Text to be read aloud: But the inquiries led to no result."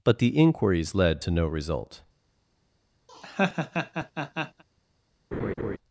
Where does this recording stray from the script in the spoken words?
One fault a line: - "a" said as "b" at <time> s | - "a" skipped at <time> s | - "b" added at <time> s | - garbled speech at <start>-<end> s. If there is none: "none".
none